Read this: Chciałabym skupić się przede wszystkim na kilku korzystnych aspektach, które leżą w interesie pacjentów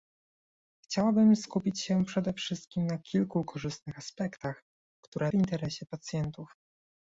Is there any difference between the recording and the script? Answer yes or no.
yes